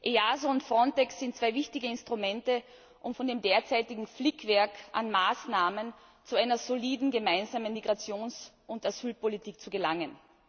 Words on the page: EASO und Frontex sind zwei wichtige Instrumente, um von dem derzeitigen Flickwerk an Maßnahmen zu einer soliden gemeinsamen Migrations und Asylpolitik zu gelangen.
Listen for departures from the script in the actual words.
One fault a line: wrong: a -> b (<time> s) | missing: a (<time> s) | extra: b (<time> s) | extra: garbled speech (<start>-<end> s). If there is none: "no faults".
no faults